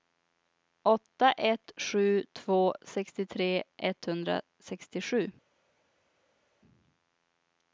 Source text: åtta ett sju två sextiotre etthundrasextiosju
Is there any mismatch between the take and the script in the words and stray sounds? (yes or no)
no